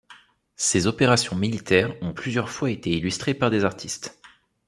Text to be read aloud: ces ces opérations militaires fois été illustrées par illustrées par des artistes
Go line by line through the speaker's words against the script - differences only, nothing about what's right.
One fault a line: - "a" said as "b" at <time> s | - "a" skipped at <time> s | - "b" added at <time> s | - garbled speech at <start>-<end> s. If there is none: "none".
- "ces" skipped at 0.9 s
- "ont plusieurs" added at 2.0 s
- "illustrées par" skipped at 3.5 s